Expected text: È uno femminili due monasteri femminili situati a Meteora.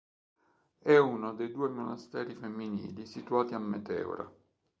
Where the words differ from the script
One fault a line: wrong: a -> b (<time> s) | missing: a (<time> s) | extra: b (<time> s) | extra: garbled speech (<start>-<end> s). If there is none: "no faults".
wrong: femminili -> dei (1.4 s)